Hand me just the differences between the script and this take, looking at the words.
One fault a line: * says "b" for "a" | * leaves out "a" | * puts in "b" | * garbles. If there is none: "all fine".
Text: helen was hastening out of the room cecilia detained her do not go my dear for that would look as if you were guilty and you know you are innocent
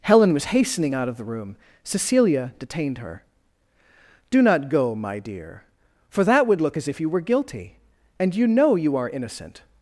all fine